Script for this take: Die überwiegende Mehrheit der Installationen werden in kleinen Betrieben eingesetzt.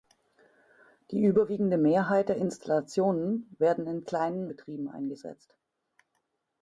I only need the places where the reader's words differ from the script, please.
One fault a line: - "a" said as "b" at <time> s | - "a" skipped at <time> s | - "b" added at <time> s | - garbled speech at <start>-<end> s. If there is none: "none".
none